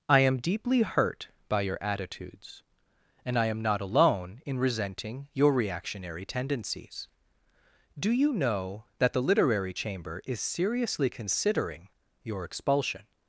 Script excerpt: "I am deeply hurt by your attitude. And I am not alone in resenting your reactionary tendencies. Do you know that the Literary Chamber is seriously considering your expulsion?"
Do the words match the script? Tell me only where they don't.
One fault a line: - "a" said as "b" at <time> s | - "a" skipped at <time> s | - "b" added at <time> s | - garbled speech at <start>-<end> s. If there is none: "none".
- "attitude" said as "attitudes" at 1.8 s